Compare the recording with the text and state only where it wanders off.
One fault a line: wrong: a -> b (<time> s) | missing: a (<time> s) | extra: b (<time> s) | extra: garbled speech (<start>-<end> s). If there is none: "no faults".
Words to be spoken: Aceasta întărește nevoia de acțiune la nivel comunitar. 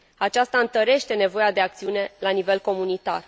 no faults